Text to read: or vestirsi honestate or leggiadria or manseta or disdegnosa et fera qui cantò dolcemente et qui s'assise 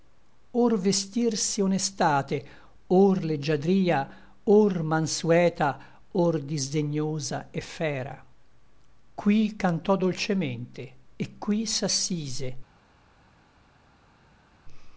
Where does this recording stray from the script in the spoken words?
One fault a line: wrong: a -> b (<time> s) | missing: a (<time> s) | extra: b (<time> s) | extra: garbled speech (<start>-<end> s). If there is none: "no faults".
no faults